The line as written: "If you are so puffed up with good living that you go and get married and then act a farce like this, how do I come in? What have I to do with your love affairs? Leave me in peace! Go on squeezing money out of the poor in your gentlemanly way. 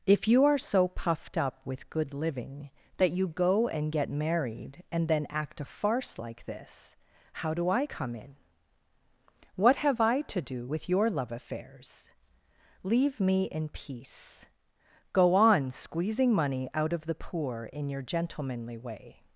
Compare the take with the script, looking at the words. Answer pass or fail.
pass